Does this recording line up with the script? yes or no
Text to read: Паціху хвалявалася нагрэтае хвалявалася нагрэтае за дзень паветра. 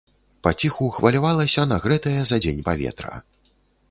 no